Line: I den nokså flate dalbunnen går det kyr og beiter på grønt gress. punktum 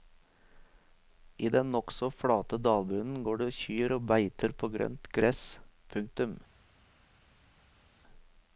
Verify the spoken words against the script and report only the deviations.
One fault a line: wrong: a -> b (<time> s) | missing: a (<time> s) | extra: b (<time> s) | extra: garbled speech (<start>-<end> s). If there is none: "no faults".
no faults